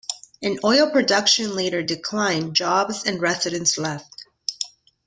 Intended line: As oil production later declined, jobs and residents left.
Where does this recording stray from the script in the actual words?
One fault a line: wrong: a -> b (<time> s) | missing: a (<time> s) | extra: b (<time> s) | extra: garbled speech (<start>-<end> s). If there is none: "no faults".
no faults